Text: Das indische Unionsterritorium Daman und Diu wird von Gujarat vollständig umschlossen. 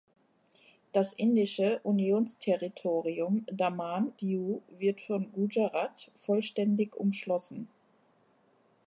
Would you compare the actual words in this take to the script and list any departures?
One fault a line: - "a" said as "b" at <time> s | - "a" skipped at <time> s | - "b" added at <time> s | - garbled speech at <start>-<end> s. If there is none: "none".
- "und" skipped at 4.1 s